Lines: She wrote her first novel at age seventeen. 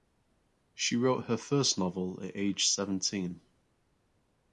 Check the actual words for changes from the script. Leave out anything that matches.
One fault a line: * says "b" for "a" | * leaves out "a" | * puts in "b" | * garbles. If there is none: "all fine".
all fine